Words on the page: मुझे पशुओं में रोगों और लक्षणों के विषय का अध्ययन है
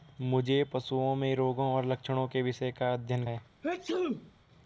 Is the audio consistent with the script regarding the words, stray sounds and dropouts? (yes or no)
no